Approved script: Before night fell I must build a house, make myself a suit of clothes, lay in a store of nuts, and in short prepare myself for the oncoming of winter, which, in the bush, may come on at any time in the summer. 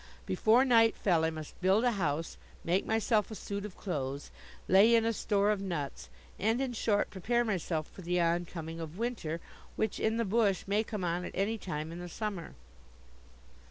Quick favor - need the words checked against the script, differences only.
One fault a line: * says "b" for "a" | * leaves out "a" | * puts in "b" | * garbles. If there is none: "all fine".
all fine